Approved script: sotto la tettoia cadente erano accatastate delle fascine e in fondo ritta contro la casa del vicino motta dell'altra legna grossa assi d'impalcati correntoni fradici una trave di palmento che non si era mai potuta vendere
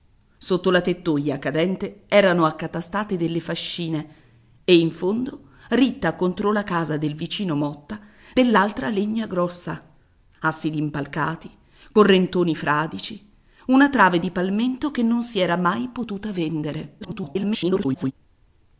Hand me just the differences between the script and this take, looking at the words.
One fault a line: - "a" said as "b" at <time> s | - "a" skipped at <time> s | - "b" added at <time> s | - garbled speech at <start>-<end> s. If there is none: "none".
- garbled speech at 17.0-18.1 s